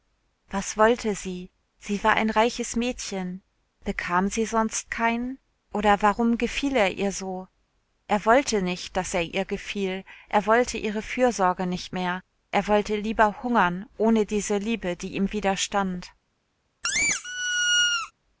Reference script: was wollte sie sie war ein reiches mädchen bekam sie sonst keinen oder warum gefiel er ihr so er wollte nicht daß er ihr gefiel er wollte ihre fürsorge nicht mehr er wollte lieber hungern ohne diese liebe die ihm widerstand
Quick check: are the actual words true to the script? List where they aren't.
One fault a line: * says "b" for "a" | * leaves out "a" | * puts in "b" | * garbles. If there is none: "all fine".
all fine